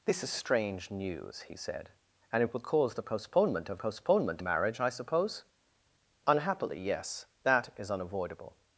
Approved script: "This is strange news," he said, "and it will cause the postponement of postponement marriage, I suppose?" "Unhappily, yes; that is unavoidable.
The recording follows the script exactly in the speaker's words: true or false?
true